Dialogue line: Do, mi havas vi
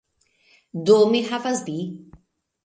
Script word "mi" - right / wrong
right